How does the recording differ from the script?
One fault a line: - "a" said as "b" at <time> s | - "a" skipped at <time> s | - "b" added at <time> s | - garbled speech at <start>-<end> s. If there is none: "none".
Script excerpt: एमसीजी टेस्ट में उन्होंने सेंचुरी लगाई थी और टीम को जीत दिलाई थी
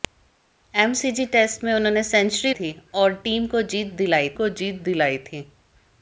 - "लगाई" skipped at 2.5 s
- "को जीत दिलाई" added at 4.3 s